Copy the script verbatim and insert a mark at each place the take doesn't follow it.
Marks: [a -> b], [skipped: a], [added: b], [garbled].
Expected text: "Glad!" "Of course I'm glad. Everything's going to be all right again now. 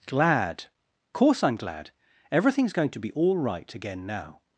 "Glad!" [skipped: "Of] course I'm glad. Everything's going to be all right again now.